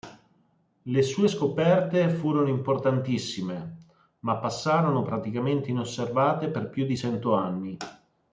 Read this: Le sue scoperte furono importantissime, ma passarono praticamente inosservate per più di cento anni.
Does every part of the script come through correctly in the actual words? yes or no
yes